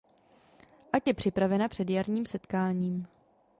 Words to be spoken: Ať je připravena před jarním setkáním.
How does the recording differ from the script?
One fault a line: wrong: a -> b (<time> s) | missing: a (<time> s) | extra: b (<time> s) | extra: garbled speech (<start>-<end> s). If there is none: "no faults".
no faults